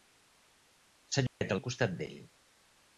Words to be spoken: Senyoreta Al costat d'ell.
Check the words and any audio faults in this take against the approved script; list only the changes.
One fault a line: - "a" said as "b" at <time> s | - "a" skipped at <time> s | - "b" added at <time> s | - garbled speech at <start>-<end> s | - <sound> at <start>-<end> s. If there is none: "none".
- dropout at 1.3-1.4 s